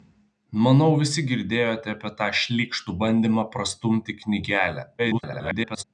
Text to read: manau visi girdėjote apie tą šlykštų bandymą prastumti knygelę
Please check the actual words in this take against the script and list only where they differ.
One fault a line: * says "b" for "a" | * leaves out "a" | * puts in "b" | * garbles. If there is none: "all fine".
* garbles